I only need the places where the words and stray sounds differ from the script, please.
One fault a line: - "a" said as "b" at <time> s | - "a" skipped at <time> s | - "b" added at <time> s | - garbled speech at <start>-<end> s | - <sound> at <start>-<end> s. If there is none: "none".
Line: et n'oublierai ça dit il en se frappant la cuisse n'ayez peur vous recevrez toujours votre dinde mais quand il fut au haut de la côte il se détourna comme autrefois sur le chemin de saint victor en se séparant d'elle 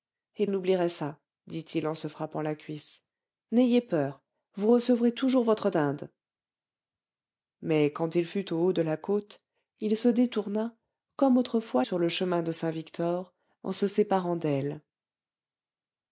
none